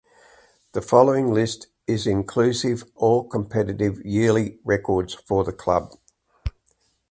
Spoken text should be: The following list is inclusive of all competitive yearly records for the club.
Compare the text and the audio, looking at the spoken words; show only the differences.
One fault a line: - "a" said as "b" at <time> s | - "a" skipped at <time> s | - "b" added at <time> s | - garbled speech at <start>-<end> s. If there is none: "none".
- "of" skipped at 2.9 s